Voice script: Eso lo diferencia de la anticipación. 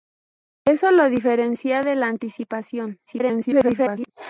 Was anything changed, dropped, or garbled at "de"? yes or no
no